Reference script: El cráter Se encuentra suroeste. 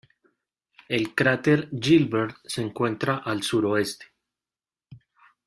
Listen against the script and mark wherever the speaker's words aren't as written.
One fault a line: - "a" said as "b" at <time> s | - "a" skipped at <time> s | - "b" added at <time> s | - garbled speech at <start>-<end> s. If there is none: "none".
- "Gilbert" added at 1.8 s
- "al" added at 3.2 s